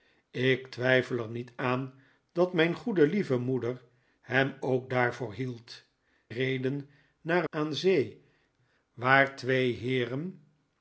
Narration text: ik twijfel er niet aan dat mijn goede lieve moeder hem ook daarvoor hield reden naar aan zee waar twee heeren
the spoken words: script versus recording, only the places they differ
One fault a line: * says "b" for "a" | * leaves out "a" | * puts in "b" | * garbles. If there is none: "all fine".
all fine